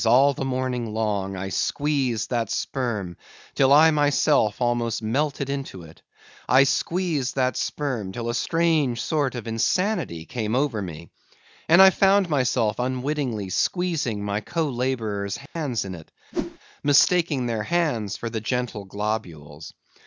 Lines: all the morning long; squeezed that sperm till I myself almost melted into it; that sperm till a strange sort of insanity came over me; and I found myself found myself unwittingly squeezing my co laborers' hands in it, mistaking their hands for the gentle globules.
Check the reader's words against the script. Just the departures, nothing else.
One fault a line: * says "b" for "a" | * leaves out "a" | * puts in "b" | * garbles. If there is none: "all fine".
* puts in "I"
* puts in "I squeezed"
* leaves out "found myself"